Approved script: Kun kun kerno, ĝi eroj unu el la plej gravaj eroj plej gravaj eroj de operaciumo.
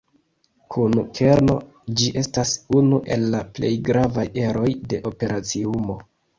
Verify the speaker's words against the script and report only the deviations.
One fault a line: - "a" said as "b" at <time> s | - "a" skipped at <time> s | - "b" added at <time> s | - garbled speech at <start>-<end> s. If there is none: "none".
- "kun" skipped at 0.9 s
- "eroj" said as "estas" at 2.2 s
- "plej gravaj eroj" skipped at 4.7 s